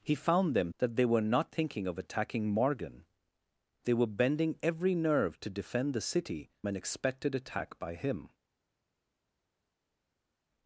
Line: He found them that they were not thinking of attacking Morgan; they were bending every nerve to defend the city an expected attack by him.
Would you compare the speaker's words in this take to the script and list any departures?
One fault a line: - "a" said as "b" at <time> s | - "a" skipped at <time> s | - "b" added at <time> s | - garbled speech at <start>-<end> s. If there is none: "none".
none